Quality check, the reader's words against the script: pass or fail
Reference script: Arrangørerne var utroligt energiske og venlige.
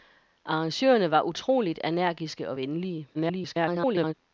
fail